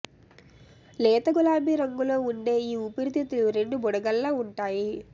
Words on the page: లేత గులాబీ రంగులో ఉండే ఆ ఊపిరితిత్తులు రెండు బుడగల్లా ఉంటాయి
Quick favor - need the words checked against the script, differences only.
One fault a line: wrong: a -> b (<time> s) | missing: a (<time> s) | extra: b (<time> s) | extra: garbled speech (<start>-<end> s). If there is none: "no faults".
wrong: ఆ -> ఈ (2.6 s)